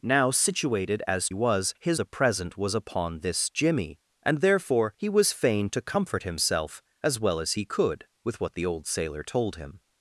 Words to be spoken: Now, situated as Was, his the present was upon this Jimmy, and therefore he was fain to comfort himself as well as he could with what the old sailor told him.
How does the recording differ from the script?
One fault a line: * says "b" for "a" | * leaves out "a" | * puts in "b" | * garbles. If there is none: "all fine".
all fine